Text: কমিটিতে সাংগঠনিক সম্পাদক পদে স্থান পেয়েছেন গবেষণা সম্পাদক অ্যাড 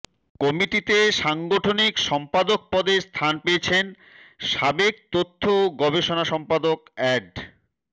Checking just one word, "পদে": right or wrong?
right